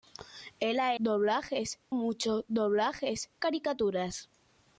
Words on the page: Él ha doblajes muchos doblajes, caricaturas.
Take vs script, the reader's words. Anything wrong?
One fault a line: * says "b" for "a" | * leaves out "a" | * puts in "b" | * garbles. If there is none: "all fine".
all fine